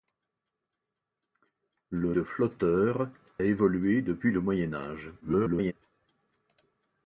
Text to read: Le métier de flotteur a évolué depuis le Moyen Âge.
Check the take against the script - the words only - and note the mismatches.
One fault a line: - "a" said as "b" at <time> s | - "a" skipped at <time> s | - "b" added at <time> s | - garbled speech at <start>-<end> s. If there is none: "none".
- "métier" skipped at 2.1 s
- "a" skipped at 3.1 s
- garbled speech at 5.2-5.7 s